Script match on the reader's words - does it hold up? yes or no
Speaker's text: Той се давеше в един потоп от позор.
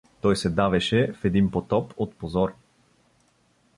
yes